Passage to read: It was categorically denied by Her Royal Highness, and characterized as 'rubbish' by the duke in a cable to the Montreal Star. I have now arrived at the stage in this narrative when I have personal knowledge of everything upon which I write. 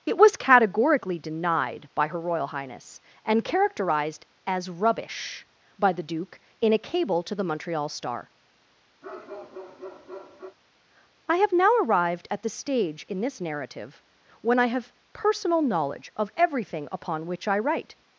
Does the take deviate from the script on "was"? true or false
false